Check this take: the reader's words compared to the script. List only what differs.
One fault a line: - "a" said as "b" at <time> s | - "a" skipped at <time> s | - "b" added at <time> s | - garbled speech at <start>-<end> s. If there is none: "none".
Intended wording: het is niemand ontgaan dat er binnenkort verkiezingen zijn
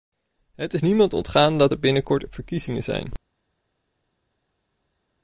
none